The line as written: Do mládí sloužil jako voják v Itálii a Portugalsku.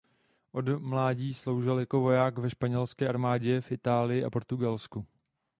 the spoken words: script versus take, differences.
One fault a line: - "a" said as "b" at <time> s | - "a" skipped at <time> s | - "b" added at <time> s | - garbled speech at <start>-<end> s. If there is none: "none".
- "Do" said as "Od" at 0.5 s
- "ve španělské armádě" added at 2.4 s